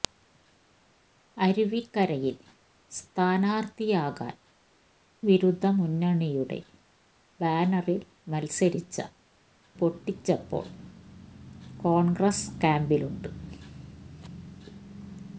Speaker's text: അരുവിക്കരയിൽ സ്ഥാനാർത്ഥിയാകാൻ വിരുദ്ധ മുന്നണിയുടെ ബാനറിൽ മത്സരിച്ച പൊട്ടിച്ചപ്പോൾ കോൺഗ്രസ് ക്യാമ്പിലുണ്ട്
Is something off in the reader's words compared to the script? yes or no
no